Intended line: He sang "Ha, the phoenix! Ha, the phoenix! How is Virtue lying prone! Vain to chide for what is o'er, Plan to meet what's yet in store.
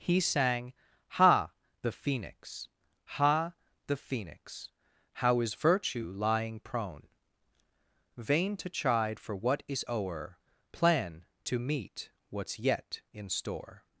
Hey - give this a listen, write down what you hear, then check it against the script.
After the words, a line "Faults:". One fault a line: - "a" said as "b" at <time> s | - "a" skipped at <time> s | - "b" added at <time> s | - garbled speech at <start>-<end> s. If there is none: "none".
He sang "Ha, the phoenix! Ha, the phoenix! How is Virtue lying prone! Vain to chide for what is o'er, Plan to meet what's yet in store.
Faults:
none